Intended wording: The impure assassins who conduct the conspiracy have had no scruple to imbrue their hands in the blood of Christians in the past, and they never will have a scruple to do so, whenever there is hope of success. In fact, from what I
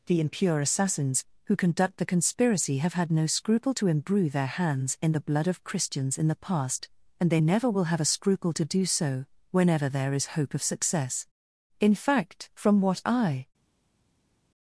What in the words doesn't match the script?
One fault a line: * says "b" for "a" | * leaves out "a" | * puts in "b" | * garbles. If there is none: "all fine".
all fine